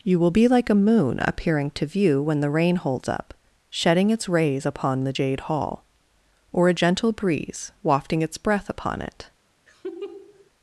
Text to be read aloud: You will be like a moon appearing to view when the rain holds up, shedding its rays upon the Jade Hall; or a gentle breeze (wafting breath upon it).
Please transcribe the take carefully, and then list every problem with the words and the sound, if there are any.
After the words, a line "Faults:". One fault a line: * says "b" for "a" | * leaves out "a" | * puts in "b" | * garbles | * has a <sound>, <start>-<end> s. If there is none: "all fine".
You will be like a moon appearing to view when the rain holds up, shedding its rays upon the Jade Hall; or a gentle breeze (wafting its breath upon it).
Faults:
* puts in "its"
* has a laugh, 9.7-10.5 s